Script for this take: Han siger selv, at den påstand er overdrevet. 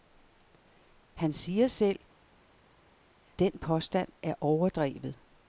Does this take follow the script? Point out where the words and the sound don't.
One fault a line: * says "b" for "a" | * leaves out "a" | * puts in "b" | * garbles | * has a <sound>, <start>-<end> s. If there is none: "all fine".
* leaves out "at"